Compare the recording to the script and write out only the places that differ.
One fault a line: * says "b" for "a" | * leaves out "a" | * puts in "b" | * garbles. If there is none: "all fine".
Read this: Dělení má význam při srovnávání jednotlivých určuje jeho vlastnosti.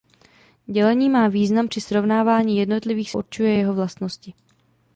all fine